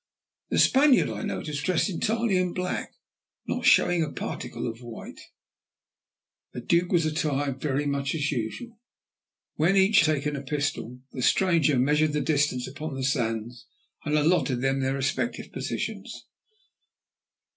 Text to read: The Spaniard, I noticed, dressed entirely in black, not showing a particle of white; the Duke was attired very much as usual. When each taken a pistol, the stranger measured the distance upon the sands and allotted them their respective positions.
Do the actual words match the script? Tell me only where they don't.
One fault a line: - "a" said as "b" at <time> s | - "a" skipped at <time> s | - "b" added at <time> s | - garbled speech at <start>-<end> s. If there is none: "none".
none